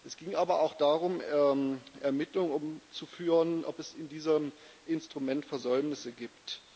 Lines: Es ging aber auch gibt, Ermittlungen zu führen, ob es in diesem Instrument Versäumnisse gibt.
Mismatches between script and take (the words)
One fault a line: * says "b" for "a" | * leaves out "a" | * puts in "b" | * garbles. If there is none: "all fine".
* says "darum" for "gibt"